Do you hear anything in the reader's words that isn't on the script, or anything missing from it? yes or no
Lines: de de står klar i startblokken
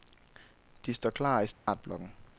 yes